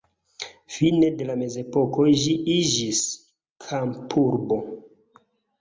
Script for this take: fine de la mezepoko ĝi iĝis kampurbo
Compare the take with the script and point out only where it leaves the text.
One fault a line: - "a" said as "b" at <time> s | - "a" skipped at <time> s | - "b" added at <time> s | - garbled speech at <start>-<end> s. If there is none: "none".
none